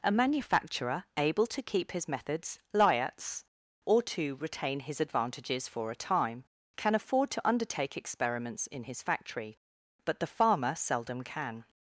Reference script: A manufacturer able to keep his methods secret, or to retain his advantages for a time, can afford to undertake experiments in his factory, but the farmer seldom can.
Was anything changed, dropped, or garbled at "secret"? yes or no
yes